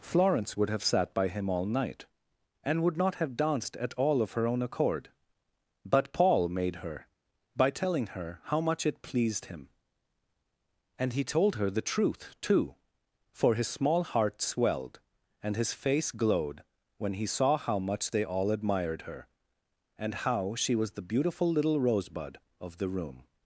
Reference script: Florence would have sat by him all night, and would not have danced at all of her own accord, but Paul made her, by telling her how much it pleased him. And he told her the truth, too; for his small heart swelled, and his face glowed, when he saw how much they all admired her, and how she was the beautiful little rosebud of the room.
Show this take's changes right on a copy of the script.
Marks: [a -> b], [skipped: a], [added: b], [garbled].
Florence would have sat by him all night, and would not have danced at all of her own accord, but Paul made her, by telling her how much it pleased him. And he told her the truth, too; for his small heart swelled, and his face glowed, when he saw how much they all admired her, and how she was the beautiful little rosebud of the room.